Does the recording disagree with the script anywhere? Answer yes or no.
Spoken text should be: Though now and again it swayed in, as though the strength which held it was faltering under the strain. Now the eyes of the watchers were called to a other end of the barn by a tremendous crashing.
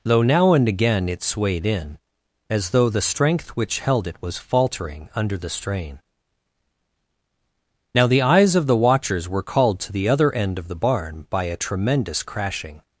yes